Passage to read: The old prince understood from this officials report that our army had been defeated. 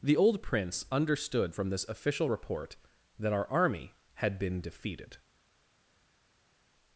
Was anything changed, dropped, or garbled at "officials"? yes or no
yes